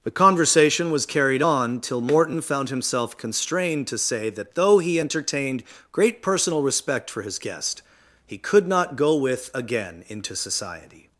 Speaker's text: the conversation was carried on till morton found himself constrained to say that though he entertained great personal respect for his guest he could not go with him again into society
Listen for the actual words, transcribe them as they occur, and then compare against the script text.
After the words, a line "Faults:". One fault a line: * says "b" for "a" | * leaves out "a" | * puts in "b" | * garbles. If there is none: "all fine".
the conversation was carried on till morton found himself constrained to say that though he entertained great personal respect for his guest he could not go with again into society
Faults:
* leaves out "him"